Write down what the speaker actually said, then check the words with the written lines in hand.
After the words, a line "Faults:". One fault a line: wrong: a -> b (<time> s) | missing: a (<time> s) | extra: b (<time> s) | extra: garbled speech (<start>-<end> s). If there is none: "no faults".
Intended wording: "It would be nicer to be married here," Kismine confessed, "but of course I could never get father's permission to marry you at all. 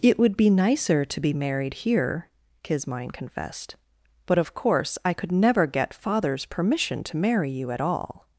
"It would be nicer to be married here," Kismine confessed, "but of course I could never get father's permission to marry you at all.
Faults:
no faults